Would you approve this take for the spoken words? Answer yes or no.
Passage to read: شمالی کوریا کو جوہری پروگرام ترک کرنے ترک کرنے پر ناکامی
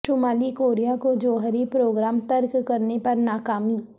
no